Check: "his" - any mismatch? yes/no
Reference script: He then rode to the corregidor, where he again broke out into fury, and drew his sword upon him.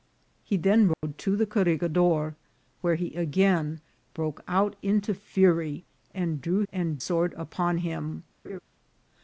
yes